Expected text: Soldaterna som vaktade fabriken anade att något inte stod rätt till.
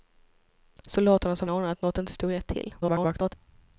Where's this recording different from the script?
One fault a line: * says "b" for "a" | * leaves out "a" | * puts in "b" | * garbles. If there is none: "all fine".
* leaves out "vaktade fabriken"
* garbles